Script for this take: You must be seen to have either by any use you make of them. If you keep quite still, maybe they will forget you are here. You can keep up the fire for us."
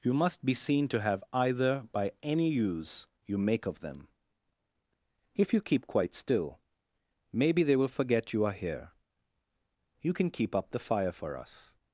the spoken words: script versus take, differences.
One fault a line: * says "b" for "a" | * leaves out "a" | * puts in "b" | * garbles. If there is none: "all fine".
all fine